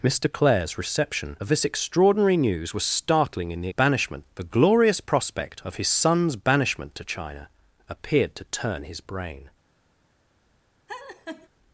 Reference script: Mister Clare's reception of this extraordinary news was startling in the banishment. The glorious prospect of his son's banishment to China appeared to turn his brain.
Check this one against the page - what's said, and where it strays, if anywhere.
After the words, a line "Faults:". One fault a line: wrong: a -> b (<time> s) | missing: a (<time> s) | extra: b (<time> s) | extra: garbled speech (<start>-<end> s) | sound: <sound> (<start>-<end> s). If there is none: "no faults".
Mister Clare's reception of this extraordinary news was startling in the banishment. The glorious prospect of his son's banishment to China appeared to turn his brain.
Faults:
sound: laugh (10.9-11.5 s)